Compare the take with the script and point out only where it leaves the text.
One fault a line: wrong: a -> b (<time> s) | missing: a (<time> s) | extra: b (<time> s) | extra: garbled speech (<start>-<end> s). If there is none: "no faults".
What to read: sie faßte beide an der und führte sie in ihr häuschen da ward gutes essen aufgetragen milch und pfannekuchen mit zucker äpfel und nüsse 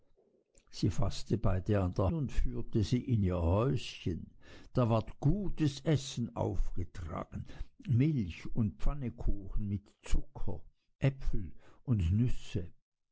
no faults